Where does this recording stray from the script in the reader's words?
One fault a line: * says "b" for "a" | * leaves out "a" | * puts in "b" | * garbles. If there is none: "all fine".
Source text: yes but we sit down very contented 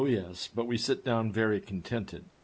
all fine